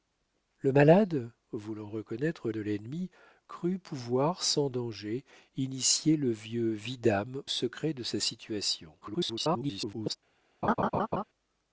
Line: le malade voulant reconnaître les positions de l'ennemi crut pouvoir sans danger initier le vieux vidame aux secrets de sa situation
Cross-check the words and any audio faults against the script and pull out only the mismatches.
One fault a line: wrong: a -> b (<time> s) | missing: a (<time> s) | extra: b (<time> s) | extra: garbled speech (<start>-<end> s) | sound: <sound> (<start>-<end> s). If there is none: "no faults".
missing: les positions (2.5 s)
missing: aux (7.4 s)
extra: garbled speech (9.0-10.2 s)
sound: laugh (10.6-11.2 s)